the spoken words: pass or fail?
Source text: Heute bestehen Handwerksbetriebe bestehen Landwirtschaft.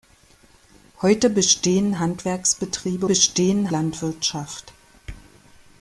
pass